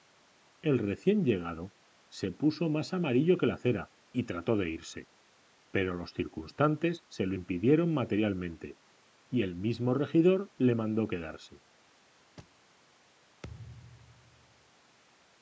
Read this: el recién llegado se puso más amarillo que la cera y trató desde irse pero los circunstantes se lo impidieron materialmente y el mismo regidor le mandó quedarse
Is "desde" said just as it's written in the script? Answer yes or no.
no